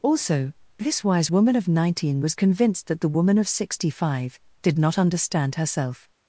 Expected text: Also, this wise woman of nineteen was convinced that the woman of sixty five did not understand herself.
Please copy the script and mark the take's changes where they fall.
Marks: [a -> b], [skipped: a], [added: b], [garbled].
Also, this wise woman of nineteen was convinced that the woman of sixty five did not understand herself.